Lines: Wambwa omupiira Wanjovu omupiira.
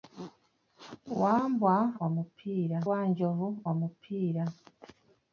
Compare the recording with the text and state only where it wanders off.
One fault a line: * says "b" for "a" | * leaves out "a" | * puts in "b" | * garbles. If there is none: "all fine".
all fine